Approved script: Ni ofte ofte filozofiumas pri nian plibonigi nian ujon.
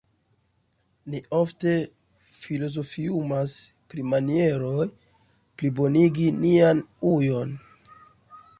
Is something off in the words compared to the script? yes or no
yes